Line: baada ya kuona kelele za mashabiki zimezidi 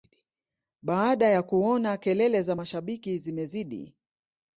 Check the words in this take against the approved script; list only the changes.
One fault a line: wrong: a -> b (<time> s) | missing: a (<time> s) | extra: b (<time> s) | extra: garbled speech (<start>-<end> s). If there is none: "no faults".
no faults